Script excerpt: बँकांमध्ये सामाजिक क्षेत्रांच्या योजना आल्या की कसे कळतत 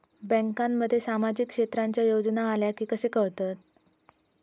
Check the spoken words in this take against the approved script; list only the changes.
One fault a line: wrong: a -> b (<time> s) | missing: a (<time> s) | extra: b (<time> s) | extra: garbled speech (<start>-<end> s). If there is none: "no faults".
no faults